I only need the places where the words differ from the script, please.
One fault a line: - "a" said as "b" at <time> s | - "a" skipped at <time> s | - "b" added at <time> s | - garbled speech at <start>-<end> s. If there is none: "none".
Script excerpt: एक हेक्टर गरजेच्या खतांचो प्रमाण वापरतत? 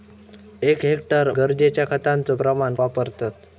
none